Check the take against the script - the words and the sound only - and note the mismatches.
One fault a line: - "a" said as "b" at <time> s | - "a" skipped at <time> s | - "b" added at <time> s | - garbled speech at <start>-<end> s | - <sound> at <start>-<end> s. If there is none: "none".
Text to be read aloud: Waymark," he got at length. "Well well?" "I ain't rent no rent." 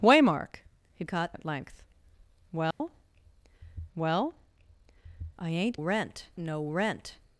- dropout at 2.7-2.8 s